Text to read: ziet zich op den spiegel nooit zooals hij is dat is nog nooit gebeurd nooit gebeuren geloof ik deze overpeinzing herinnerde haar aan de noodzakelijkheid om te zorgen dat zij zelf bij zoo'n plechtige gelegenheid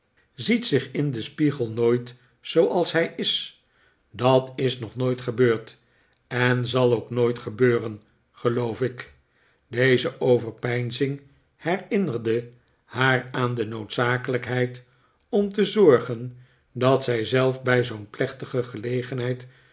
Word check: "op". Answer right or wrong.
wrong